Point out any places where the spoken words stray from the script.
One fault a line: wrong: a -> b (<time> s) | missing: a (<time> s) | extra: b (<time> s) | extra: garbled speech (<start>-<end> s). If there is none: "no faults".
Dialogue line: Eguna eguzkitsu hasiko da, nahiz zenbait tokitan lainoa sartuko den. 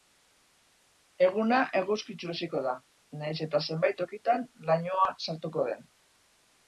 extra: eta (3.5 s)